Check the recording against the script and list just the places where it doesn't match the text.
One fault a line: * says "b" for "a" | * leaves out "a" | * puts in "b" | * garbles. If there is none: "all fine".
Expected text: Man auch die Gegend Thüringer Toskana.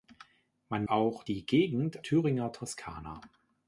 all fine